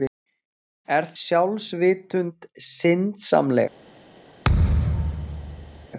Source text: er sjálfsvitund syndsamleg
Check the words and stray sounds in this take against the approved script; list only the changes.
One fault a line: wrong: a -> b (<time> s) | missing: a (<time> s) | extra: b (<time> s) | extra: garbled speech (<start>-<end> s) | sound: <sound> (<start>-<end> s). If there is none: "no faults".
sound: thud (4.4-5.9 s)